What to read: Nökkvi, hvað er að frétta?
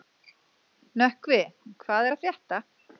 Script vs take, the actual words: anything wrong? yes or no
no